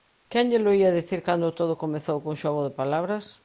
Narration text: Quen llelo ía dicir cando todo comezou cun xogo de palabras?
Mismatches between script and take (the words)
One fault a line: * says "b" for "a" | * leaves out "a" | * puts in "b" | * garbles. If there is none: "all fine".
all fine